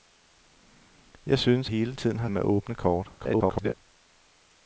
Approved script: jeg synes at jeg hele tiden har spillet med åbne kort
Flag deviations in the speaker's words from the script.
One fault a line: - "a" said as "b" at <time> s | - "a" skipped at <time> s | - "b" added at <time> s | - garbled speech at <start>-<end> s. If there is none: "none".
- "at jeg" skipped at 1.7 s
- "spillet" skipped at 2.3 s
- garbled speech at 3.2-3.7 s